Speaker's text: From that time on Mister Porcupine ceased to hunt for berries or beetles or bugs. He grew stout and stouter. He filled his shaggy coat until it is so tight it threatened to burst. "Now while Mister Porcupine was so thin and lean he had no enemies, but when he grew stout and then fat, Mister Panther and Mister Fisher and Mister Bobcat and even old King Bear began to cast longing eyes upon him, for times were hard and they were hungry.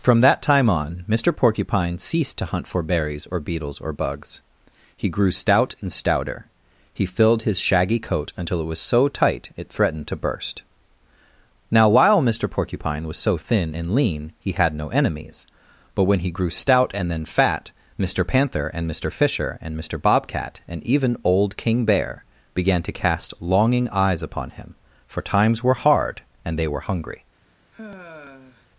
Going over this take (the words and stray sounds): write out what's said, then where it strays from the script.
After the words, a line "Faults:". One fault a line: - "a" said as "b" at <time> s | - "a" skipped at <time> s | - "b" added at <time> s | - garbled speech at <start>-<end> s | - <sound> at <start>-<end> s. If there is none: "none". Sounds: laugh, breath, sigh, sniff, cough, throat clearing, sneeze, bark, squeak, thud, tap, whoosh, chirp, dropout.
From that time on Mister Porcupine ceased to hunt for berries or beetles or bugs. He grew stout and stouter. He filled his shaggy coat until it was so tight it threatened to burst. "Now while Mister Porcupine was so thin and lean he had no enemies, but when he grew stout and then fat, Mister Panther and Mister Fisher and Mister Bobcat and even old King Bear began to cast longing eyes upon him, for times were hard and they were hungry.
Faults:
- "is" said as "was" at 8.7 s
- sigh at 27.7-28.7 s